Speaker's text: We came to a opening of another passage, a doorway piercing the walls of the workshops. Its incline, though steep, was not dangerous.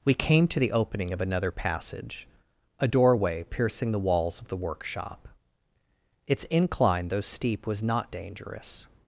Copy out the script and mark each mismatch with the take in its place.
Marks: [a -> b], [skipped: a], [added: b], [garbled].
We came to [a -> the] opening of another passage, a doorway piercing the walls of the [workshops. -> workshop] Its incline, though steep, was not dangerous.